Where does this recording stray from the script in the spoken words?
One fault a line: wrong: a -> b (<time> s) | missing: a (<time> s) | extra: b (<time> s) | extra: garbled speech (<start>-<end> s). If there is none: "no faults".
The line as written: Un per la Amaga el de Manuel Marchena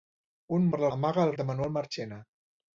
no faults